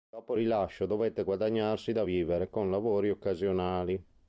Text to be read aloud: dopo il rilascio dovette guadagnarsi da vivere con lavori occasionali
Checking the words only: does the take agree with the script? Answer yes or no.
yes